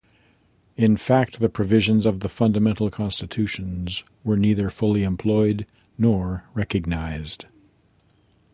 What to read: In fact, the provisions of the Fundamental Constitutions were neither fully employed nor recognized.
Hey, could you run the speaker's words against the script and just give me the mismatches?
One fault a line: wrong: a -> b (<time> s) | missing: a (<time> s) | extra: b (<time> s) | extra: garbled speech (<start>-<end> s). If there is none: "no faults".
no faults